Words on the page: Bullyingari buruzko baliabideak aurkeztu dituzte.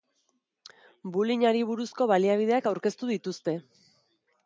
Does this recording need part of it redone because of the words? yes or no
no